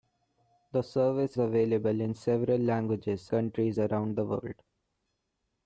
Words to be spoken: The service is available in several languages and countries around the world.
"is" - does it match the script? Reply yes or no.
no